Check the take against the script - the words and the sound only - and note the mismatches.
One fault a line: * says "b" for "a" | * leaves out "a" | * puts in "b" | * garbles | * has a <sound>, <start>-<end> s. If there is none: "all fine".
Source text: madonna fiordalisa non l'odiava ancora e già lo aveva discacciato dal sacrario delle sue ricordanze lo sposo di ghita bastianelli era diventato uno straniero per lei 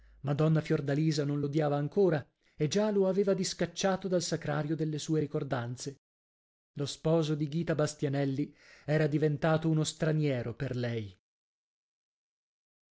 all fine